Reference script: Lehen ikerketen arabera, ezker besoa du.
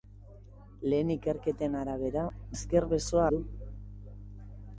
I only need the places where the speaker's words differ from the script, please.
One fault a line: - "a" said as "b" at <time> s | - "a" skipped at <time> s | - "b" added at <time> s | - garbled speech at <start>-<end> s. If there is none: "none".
none